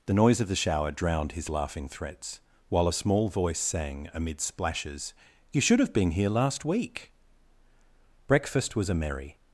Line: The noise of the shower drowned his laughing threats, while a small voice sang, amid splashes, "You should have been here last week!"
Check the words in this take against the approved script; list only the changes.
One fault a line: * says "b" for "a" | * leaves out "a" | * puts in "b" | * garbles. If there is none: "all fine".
* puts in "Breakfast was a merry"